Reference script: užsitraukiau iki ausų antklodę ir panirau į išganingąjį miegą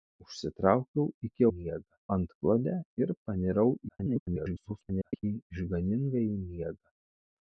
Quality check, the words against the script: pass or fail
fail